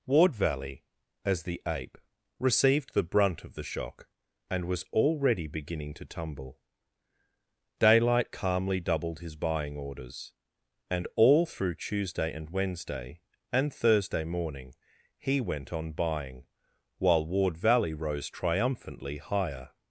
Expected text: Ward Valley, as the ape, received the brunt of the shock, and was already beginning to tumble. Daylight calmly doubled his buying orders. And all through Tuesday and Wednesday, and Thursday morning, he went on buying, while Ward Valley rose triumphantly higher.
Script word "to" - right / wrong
right